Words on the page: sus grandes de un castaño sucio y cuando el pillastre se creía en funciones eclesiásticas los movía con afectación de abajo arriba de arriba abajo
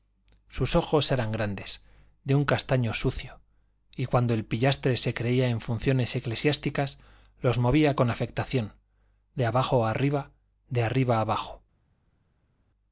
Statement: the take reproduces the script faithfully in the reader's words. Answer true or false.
false